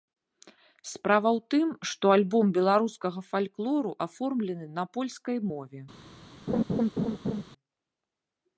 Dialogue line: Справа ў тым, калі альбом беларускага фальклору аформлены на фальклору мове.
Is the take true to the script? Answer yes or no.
no